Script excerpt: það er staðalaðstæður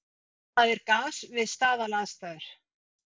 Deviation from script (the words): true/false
true